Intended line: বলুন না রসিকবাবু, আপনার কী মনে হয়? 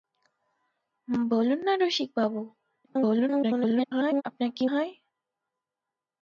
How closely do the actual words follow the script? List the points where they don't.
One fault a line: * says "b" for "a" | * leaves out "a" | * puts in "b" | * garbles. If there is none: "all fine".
* garbles
* leaves out "মনে"